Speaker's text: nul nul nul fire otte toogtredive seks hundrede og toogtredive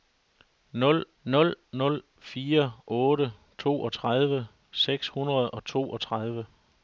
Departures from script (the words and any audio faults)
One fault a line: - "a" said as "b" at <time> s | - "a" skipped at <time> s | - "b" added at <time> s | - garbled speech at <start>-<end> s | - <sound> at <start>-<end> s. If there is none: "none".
none